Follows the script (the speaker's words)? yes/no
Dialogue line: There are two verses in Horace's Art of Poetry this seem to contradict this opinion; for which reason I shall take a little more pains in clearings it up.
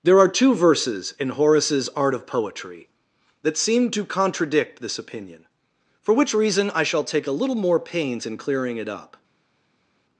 no